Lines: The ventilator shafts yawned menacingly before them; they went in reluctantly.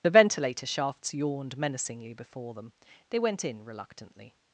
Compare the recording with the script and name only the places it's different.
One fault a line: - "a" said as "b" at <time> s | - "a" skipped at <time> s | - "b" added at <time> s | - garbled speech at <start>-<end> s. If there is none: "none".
none